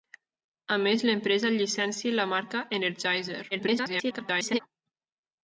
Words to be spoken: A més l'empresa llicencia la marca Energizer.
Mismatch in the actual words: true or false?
true